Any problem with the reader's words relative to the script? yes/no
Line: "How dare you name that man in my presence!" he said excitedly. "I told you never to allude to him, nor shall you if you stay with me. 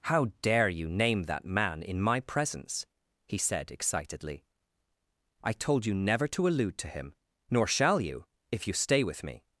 no